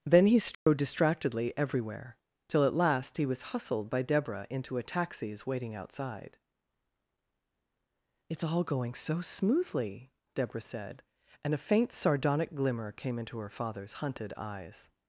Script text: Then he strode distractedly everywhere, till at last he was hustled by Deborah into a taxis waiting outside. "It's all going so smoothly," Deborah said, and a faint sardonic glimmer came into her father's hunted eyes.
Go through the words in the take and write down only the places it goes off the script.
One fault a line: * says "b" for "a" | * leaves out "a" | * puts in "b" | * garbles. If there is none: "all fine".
all fine